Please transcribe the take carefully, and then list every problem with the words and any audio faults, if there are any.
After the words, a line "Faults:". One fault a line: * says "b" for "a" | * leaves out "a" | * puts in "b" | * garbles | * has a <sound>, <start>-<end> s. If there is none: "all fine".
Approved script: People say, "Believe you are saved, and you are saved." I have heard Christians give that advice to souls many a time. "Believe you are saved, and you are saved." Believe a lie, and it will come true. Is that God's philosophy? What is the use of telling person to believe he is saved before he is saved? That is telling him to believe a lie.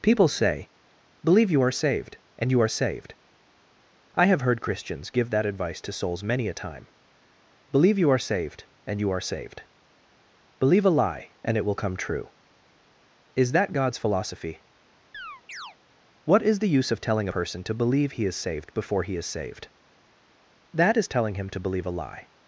People say, "Believe you are saved, and you are saved." I have heard Christians give that advice to souls many a time. "Believe you are saved, and you are saved." Believe a lie, and it will come true. Is that God's philosophy? What is the use of telling person to believe he is saved before he is saved? That is telling him to believe a lie.
Faults:
* has a chirp, 15.1-15.8 s